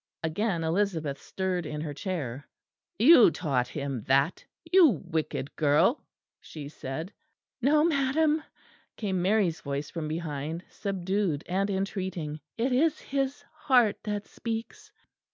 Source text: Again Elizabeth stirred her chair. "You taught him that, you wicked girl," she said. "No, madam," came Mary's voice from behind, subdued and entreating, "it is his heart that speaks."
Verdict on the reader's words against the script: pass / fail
fail